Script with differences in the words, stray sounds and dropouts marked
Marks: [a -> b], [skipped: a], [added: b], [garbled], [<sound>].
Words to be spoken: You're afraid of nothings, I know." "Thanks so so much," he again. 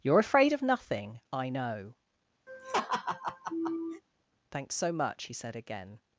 You're afraid of [nothings, -> nothing] I know." [laugh] "Thanks so [skipped: so] much," he [added: said] again.